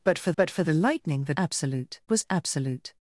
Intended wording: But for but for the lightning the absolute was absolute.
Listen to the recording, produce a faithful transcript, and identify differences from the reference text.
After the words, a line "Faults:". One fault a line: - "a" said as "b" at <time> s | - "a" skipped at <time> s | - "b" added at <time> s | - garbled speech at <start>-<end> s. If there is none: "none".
But for but for the lightning the absolute was absolute.
Faults:
none